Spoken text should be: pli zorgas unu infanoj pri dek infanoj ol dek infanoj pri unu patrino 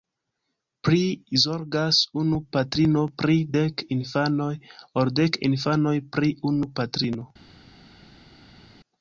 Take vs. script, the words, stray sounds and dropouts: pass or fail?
fail